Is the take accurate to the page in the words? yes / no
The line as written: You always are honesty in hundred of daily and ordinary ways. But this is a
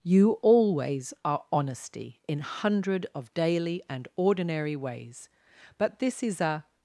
yes